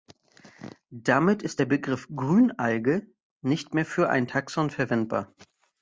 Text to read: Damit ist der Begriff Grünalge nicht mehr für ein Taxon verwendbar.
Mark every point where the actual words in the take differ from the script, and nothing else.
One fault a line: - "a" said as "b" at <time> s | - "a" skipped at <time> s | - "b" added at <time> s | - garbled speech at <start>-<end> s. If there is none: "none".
none